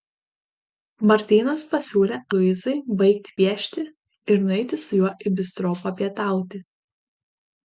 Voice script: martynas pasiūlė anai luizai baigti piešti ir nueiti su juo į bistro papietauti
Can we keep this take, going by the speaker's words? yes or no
no